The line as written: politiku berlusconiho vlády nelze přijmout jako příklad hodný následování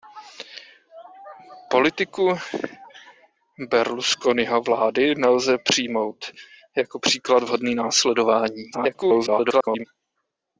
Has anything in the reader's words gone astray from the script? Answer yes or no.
yes